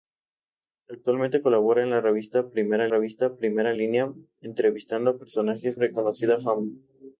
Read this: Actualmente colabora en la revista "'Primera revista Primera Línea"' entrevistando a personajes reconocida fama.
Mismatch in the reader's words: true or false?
false